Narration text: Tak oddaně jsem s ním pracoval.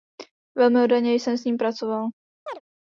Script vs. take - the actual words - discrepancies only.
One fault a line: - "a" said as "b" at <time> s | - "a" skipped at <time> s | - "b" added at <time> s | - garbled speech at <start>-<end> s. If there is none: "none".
- "Tak" said as "Velmi" at 0.6 s